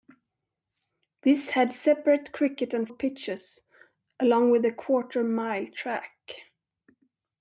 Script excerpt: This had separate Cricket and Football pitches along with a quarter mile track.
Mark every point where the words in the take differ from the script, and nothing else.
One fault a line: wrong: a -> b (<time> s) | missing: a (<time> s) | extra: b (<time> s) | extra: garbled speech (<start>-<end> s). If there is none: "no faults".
missing: Football (2.9 s)